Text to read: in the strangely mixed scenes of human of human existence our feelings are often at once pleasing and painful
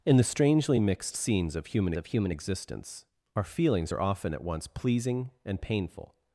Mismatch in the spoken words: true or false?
false